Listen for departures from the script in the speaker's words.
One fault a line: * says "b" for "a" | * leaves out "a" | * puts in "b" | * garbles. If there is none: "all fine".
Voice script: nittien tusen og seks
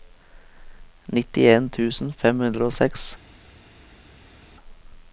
* puts in "fem hundre"